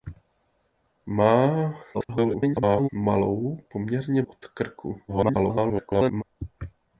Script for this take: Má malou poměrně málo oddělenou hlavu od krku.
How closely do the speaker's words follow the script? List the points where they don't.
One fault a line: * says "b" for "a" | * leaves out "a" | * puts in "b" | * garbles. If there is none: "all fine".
* garbles
* leaves out "málo oddělenou hlavu"
* garbles